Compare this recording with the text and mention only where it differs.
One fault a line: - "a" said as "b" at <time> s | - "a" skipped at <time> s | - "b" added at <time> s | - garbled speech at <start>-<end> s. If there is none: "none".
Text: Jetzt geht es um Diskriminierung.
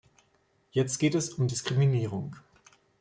none